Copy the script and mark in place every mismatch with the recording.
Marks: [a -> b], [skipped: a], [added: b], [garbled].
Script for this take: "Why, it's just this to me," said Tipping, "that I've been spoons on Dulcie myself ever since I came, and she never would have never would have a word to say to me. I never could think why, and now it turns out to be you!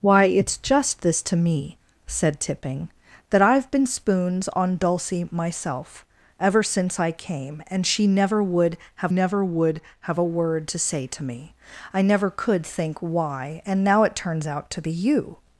"Why, it's just this to me," said Tipping, "that I've been spoons on Dulcie myself ever since I came, and she never would have never would have a word to say to me. I never could think why, and now it turns out to be you!